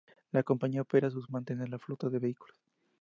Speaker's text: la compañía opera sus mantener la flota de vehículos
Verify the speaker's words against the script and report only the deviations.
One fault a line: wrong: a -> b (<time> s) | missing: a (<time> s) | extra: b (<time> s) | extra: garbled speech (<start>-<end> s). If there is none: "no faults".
no faults